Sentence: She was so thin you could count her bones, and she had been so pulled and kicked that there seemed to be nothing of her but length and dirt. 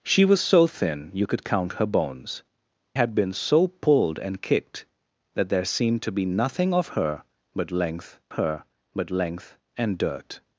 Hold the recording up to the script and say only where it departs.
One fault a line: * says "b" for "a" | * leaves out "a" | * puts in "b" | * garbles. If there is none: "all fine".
* leaves out "and she"
* puts in "her but length"